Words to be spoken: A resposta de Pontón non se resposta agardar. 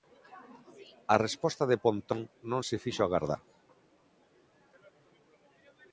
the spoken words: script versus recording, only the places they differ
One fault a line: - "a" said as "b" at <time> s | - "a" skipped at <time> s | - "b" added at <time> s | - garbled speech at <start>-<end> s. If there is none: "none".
- "resposta" said as "fixo" at 2.8 s